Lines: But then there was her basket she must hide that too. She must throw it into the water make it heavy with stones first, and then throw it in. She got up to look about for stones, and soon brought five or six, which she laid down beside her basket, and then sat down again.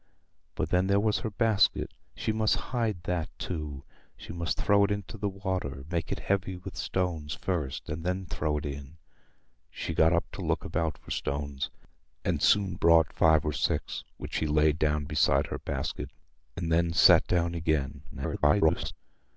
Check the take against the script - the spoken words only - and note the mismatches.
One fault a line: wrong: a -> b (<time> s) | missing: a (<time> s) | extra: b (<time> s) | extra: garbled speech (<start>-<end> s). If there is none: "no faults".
extra: garbled speech (18.1-18.9 s)